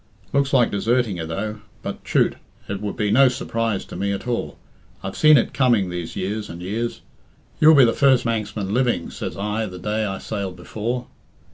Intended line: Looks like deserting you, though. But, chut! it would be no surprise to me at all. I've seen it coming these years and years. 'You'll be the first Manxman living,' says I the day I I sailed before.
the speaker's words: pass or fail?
fail